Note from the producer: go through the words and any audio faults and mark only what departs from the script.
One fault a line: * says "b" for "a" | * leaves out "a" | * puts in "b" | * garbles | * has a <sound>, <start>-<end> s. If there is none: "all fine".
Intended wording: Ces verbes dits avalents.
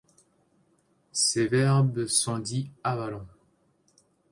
* puts in "sont"